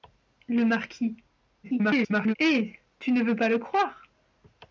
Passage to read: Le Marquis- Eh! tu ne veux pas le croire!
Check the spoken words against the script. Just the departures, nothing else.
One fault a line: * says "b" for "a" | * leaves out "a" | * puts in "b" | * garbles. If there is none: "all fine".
* garbles